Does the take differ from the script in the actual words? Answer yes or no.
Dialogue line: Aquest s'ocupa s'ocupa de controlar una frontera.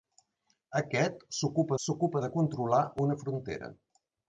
no